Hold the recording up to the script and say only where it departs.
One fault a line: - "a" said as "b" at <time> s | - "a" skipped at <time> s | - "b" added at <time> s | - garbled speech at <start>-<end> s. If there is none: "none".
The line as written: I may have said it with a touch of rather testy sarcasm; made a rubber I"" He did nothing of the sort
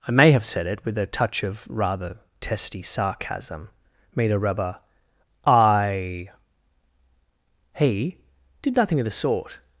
none